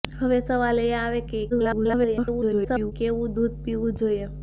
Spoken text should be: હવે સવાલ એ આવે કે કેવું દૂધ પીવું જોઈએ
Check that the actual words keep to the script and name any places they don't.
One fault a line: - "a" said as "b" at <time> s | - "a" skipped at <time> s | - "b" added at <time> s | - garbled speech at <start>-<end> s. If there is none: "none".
- garbled speech at 1.5-2.9 s